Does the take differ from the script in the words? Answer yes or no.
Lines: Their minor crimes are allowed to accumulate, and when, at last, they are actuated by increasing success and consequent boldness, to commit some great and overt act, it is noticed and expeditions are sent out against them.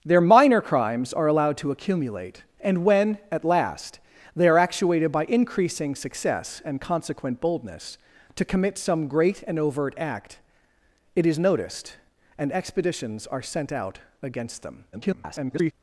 yes